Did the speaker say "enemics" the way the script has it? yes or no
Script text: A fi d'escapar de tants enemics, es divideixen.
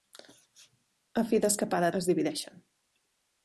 no